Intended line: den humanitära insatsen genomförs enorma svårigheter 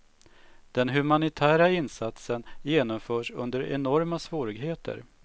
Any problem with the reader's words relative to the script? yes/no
yes